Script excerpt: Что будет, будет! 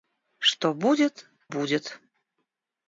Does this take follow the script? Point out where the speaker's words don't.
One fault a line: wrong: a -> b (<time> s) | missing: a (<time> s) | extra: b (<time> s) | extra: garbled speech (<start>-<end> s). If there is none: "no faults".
no faults